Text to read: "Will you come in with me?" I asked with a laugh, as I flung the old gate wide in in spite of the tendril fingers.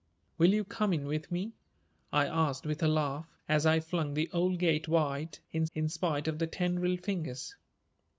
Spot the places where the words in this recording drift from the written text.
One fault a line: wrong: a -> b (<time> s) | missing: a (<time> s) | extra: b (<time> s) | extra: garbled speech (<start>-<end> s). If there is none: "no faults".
no faults